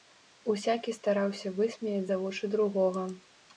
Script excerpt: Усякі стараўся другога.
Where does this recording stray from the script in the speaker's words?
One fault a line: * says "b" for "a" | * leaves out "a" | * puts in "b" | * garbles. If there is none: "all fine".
* puts in "высмеяць за вочы"